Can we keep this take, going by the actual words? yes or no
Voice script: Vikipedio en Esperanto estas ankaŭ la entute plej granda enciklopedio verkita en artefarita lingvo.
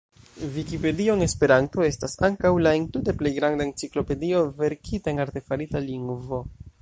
yes